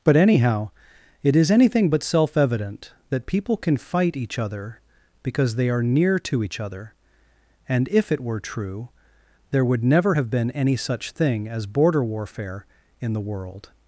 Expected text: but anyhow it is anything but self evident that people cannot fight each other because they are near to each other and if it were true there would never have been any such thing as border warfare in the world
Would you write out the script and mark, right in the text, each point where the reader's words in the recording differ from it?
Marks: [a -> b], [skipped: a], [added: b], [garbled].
but anyhow it is anything but self evident that people [cannot -> can] fight each other because they are near to each other and if it were true there would never have been any such thing as border warfare in the world